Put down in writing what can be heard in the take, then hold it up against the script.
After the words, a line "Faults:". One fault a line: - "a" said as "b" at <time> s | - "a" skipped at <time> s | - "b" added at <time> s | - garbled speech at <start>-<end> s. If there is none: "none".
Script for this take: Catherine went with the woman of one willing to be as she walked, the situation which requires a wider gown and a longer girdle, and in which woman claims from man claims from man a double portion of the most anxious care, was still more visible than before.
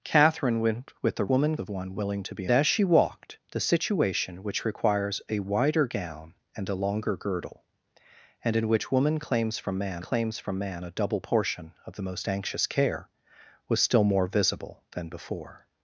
Catherine went with the woman of one willing to be as she walked, the situation which requires a wider gown and a longer girdle, and in which woman claims from man claims from man a double portion of the most anxious care, was still more visible than before.
Faults:
none